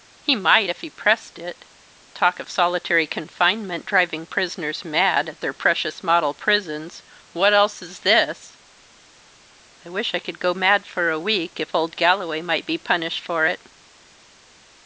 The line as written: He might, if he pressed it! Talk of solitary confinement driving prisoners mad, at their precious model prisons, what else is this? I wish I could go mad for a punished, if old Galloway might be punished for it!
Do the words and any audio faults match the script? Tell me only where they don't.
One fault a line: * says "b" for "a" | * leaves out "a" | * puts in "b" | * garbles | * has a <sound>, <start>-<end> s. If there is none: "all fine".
* says "week" for "punished"